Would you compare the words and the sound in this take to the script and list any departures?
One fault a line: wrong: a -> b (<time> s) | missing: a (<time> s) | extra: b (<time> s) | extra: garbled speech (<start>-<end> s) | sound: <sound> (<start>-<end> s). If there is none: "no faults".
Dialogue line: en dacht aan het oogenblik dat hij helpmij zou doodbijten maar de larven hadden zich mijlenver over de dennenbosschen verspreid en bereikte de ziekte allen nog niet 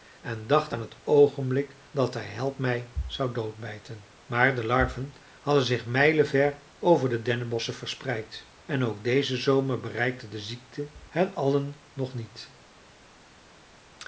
extra: ook dezen zomer (8.8 s)
extra: hen (11.1 s)